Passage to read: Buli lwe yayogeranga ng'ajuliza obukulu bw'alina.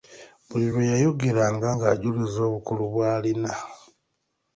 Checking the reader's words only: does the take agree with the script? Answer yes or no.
yes